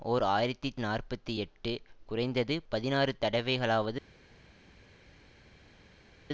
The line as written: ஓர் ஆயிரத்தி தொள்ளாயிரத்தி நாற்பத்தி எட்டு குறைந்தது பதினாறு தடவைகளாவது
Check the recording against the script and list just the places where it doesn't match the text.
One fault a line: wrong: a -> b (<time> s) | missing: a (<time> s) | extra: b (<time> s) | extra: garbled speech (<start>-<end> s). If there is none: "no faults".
missing: தொள்ளாயிரத்தி (0.7 s)